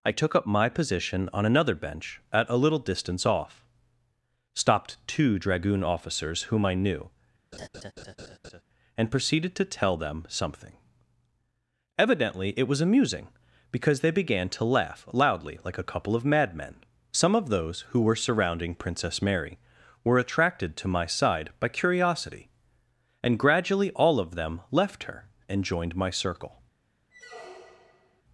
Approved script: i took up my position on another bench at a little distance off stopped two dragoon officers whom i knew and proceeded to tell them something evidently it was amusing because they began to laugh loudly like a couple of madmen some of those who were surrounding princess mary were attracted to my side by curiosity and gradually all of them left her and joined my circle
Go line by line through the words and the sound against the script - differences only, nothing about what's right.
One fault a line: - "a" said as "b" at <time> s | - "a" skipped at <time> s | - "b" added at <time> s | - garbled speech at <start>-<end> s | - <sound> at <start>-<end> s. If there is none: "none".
- laugh at 7.5-8.6 s
- squeak at 27.1-28.2 s